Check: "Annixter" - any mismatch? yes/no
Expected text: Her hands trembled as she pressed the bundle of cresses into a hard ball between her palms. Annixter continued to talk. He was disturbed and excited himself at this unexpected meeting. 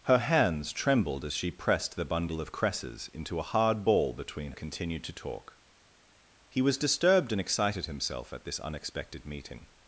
yes